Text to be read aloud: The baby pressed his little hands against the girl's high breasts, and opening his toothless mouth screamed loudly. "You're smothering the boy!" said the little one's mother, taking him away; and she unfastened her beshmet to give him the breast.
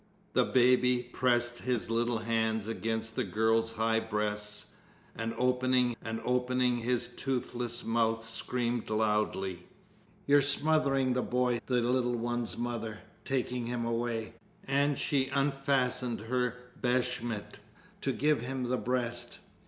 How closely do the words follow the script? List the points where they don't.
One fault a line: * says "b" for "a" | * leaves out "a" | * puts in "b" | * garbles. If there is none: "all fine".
* puts in "and opening"
* leaves out "said"